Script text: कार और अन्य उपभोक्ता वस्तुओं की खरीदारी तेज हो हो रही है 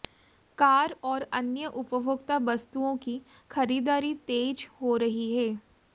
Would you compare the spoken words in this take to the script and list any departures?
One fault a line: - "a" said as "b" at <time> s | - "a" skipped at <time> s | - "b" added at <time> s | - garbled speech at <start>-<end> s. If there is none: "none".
- "हो" skipped at 5.0 s